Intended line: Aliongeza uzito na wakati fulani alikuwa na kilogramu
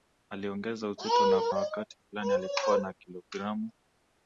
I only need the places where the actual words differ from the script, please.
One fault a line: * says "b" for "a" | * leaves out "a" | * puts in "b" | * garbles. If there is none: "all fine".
all fine